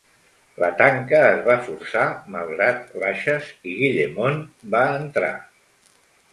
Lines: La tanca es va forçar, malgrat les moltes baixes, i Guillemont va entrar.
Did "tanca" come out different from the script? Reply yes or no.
no